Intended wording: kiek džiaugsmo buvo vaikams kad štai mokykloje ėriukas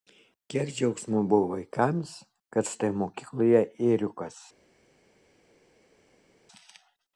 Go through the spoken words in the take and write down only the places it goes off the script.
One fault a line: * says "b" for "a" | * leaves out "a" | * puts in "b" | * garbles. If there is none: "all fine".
all fine